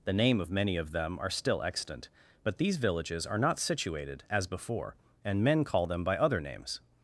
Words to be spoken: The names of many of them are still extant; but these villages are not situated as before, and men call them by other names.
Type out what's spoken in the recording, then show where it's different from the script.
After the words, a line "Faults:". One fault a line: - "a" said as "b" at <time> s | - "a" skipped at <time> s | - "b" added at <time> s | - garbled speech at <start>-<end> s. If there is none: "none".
The name of many of them are still extant; but these villages are not situated as before, and men call them by other names.
Faults:
- "names" said as "name" at 0.1 s